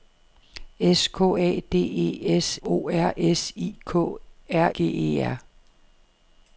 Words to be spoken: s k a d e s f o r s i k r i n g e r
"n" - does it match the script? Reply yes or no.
no